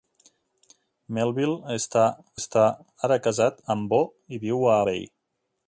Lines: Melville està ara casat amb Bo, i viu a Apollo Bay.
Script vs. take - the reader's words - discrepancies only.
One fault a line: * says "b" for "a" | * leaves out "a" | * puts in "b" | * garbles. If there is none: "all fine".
* puts in "està"
* leaves out "Apollo"